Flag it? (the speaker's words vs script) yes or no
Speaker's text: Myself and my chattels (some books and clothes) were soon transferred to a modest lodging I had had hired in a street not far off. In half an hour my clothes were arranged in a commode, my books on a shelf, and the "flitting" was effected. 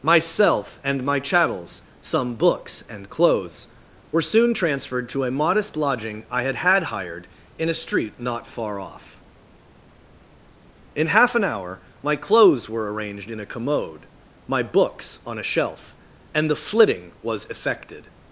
no